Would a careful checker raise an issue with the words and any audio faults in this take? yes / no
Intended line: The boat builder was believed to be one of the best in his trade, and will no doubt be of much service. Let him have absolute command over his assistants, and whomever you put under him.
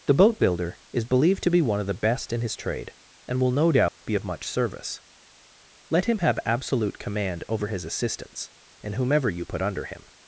yes